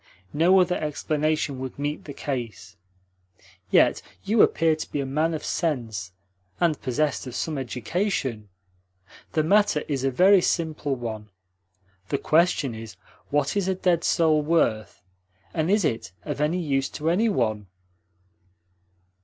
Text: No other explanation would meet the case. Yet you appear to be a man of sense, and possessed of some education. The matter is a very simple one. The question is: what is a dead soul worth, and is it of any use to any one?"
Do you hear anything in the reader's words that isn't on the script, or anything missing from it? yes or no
no